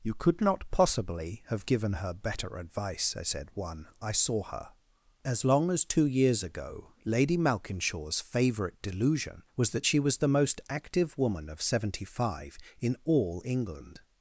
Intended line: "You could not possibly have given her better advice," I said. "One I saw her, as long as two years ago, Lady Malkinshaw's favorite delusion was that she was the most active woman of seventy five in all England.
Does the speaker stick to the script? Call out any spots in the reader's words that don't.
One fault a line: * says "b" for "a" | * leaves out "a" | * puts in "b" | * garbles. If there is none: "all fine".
all fine